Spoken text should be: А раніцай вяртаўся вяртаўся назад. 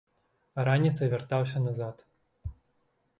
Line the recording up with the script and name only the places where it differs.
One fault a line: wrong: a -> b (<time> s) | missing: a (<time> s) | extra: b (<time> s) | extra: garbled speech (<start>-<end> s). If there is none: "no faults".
missing: вяртаўся (1.6 s)